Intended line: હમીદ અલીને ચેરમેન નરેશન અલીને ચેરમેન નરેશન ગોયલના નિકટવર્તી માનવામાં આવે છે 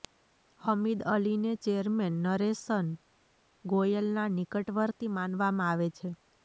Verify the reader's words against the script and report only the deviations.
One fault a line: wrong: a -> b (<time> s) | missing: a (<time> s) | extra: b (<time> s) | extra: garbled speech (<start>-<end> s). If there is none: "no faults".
missing: અલીને ચેરમેન નરેશન (2.9 s)